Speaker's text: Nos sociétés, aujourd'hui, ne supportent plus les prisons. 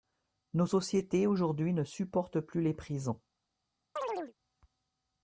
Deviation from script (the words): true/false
false